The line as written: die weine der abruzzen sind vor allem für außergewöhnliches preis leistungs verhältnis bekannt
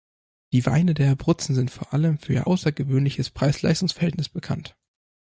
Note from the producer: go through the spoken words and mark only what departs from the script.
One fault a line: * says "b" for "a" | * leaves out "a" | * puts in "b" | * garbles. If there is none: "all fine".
* puts in "ihr"